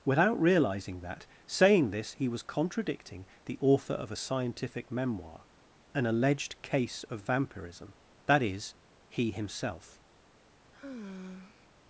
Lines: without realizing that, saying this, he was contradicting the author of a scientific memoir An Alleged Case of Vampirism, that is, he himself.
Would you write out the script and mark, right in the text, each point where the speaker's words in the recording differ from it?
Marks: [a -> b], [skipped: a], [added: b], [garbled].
without realizing that, saying this, he was contradicting the author of a scientific memoir An Alleged Case of Vampirism, that is, he himself.